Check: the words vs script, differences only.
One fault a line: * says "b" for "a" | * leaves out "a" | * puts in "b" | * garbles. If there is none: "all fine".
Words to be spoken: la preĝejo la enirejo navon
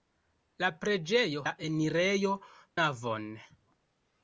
all fine